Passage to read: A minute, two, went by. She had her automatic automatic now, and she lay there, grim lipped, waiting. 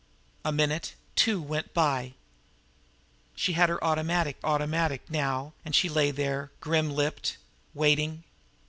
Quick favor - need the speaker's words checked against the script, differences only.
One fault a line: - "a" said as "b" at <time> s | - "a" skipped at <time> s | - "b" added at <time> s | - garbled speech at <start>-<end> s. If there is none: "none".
none